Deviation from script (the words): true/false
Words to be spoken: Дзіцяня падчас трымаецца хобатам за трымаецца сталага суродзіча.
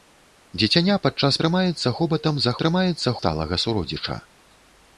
false